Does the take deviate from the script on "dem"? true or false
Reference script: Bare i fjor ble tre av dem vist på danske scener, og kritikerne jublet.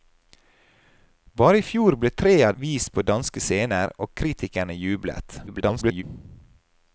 true